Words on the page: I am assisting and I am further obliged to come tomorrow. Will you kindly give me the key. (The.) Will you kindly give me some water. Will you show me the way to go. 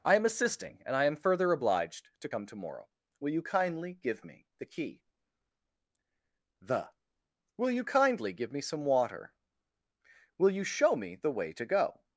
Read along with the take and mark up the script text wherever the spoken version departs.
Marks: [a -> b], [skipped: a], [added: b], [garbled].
I am assisting and I am further obliged to come tomorrow. Will you kindly give me the key. (The.) Will you kindly give me some water. Will you show me the way to go.